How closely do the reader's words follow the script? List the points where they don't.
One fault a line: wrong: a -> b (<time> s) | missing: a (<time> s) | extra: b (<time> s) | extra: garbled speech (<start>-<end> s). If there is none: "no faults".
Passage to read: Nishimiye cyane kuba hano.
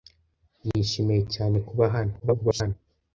extra: garbled speech (2.2-2.8 s)